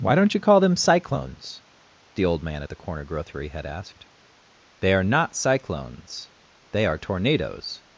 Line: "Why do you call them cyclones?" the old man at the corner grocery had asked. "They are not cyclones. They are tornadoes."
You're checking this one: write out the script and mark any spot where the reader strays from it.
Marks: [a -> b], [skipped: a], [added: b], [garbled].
"Why [do -> don't] you call them cyclones?" the old man at the corner grocery had asked. "They are not cyclones. They are tornadoes."